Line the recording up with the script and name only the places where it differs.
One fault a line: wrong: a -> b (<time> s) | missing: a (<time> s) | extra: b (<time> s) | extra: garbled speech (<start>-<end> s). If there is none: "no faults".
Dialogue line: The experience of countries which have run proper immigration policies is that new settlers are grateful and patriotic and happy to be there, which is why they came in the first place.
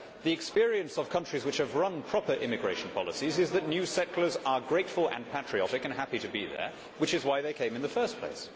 no faults